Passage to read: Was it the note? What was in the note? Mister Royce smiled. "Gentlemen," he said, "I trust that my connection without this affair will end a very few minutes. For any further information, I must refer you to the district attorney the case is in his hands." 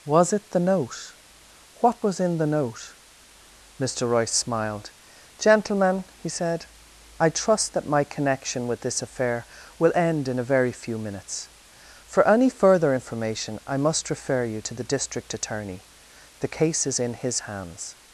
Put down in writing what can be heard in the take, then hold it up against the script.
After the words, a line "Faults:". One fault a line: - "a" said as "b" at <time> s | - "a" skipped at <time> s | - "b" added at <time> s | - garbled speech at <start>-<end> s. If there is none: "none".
Was it the note? What was in the note? Mister Royce smiled. "Gentlemen," he said, "I trust that my connection with this affair will end in a very few minutes. For any further information, I must refer you to the district attorney the case is in his hands."
Faults:
- "without" said as "with" at 8.7 s
- "in" added at 10.3 s